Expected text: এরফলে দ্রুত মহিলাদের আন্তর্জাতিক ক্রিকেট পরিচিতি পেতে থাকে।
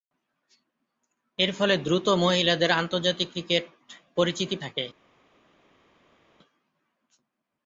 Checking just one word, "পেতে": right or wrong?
wrong